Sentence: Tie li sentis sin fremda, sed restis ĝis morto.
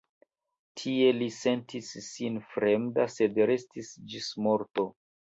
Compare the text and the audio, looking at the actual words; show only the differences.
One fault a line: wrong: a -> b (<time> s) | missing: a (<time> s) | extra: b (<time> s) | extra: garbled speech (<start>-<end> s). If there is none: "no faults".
no faults